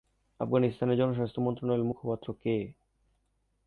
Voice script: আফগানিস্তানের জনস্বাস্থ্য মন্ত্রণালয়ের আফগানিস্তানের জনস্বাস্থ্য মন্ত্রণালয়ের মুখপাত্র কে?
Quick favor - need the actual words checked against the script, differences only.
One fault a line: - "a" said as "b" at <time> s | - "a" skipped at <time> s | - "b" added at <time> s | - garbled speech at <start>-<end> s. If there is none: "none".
- "আফগানিস্তানের জনস্বাস্থ্য মন্ত্রণালয়ের" skipped at 1.9 s